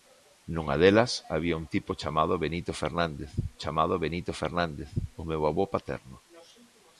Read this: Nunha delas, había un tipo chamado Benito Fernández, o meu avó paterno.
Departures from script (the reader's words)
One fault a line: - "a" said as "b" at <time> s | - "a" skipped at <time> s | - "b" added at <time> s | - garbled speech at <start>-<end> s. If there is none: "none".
- "chamado Benito Fernández" added at 3.6 s